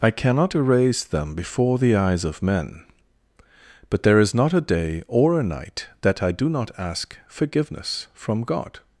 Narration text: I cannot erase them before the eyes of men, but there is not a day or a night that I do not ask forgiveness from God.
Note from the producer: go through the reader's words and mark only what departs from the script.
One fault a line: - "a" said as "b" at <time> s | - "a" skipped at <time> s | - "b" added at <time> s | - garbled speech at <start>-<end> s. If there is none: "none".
none